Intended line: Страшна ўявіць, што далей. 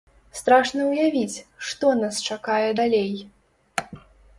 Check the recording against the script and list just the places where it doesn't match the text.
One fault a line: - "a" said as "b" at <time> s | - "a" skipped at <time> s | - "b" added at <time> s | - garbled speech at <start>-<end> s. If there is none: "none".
- "нас чакае" added at 2.0 s